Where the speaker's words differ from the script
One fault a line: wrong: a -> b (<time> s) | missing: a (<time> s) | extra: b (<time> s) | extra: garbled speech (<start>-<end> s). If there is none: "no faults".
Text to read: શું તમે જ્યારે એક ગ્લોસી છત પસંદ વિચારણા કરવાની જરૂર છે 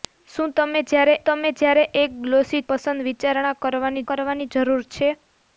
extra: તમે જ્યારે (1.2 s)
missing: છત (2.6 s)
extra: કરવાની (4.1 s)